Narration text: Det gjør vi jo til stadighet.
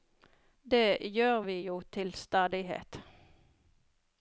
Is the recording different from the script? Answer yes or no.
no